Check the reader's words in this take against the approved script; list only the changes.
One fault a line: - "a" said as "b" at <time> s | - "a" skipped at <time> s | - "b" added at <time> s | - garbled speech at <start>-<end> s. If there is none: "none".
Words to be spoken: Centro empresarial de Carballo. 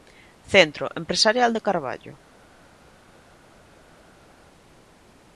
none